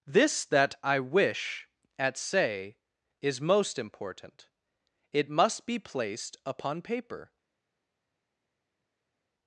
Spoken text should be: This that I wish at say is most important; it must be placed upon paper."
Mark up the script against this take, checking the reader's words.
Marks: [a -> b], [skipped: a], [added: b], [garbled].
This that I wish at say is most important; it must be placed upon paper."